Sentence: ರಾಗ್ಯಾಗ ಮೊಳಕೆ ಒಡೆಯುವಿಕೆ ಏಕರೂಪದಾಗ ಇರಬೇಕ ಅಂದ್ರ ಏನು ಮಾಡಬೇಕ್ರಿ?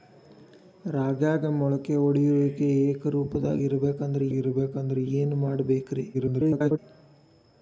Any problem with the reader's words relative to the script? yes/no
yes